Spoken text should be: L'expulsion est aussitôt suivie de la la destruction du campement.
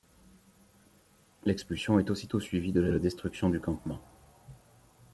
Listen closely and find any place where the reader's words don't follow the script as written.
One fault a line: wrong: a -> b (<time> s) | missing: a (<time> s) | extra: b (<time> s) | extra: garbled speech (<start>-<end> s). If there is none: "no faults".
no faults